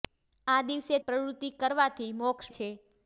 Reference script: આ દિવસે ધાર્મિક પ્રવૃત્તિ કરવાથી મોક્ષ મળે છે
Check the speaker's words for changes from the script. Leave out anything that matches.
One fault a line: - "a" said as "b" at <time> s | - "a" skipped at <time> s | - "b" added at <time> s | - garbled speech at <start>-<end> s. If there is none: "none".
- "ધાર્મિક" skipped at 1.0 s
- "મળે" skipped at 2.5 s